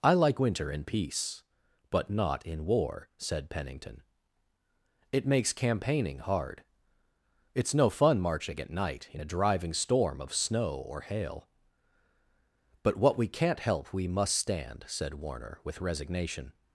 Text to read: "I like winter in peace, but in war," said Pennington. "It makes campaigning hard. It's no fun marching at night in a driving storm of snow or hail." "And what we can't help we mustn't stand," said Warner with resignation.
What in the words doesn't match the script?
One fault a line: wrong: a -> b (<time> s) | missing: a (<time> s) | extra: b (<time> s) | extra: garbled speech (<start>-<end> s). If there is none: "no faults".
extra: not (2.1 s)
wrong: And -> But (12.8 s)
wrong: mustn't -> must (14.1 s)